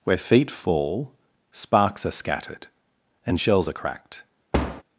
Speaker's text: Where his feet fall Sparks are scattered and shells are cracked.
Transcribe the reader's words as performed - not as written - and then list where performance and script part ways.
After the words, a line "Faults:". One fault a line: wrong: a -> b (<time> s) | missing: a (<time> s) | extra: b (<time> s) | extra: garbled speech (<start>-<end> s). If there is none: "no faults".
Where feet fall Sparks are scattered and shells are cracked.
Faults:
missing: his (0.2 s)